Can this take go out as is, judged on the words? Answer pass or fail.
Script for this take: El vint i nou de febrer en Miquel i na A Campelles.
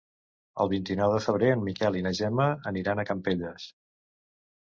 fail